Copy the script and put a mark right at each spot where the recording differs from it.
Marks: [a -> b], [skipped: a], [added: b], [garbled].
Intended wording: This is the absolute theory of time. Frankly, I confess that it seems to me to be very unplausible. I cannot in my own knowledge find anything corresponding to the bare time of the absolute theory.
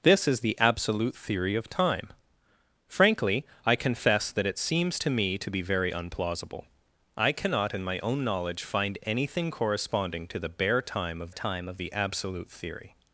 This is the absolute theory of time. Frankly, I confess that it seems to me to be very unplausible. I cannot in my own knowledge find anything corresponding to the bare time of [added: time of] the absolute theory.